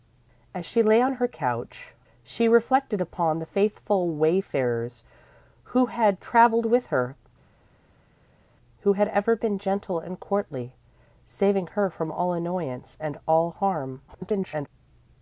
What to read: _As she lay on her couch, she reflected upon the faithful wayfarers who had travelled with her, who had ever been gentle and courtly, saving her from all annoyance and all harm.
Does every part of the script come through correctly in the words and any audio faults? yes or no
no